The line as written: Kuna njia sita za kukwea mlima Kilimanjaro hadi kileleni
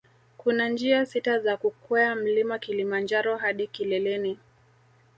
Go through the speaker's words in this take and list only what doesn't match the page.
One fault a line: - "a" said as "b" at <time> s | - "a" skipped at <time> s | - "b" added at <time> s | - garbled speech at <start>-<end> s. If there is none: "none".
none